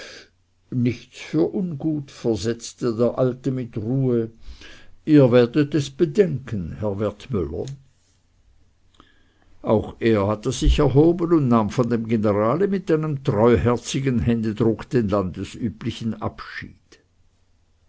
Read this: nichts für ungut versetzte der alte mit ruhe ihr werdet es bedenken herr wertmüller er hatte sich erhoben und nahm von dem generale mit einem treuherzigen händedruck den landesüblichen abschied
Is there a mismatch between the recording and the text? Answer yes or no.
yes